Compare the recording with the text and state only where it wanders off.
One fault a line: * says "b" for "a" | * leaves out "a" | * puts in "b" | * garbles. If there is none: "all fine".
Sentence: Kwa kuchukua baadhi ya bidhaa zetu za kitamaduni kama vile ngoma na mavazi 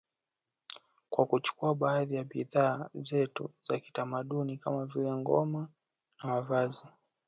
all fine